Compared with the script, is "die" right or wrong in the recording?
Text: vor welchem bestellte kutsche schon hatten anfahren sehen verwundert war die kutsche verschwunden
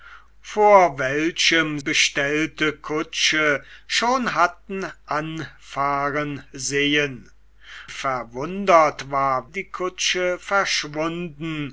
right